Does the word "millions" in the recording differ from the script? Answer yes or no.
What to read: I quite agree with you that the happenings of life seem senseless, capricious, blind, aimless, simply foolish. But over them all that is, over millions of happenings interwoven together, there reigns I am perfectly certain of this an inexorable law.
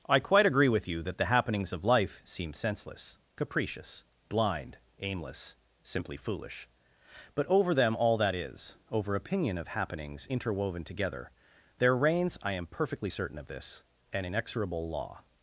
yes